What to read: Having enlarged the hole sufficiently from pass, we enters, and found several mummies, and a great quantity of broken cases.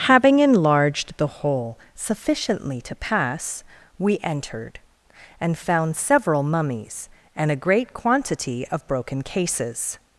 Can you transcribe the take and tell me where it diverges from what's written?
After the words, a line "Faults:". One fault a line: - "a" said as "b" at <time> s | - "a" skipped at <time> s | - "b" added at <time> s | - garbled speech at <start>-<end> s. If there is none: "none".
Having enlarged the hole sufficiently to pass, we entered, and found several mummies, and a great quantity of broken cases.
Faults:
- "from" said as "to" at 2.8 s
- "enters" said as "entered" at 4.2 s